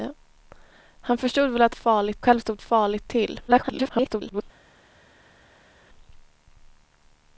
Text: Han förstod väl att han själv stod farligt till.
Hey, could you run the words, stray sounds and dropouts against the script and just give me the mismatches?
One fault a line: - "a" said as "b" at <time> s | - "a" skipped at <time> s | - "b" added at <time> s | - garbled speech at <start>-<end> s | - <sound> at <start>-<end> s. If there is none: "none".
- "han" said as "farligt" at 1.8 s
- garbled speech at 3.5-4.4 s